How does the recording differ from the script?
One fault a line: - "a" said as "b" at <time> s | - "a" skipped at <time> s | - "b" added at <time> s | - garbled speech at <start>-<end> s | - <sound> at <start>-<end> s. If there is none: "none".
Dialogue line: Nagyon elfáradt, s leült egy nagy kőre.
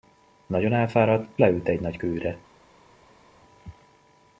- "s" skipped at 1.3 s